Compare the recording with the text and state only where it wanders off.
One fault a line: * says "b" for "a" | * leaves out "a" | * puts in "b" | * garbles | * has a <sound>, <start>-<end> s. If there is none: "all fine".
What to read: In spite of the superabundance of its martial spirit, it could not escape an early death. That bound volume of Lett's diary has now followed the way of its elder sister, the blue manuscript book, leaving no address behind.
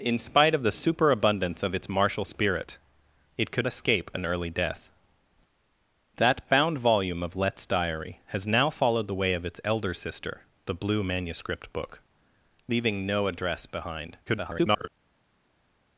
* leaves out "not"
* garbles